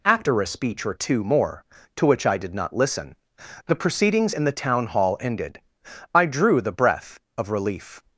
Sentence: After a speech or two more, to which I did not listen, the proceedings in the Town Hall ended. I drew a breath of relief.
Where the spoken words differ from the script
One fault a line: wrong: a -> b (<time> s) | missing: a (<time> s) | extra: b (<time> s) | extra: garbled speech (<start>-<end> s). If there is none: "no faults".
wrong: a -> the (6.6 s)